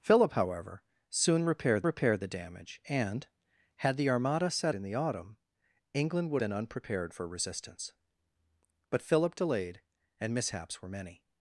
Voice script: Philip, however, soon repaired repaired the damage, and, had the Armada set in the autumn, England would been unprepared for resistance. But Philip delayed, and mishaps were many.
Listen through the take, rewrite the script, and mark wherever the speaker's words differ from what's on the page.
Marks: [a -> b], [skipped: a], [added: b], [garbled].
Philip, however, soon repaired repaired the damage, and, had the Armada set in the autumn, England would been unprepared for resistance. But Philip delayed, and mishaps were many.